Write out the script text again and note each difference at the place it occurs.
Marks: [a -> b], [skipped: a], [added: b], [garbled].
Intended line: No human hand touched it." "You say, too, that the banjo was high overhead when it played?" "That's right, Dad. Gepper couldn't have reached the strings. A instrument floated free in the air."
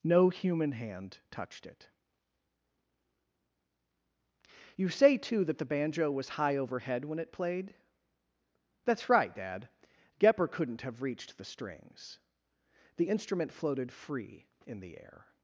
No human hand touched it." "You say, too, that the banjo was high overhead when it played?" "That's right, Dad. Gepper couldn't have reached the strings. [A -> The] instrument floated free in the air."